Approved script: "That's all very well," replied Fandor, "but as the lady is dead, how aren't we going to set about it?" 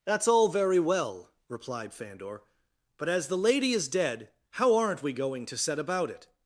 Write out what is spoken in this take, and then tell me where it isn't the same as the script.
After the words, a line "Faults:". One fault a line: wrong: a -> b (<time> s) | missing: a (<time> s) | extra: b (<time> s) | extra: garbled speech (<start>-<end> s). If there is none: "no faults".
"That's all very well," replied Fandor, "but as the lady is dead, how aren't we going to set about it?"
Faults:
no faults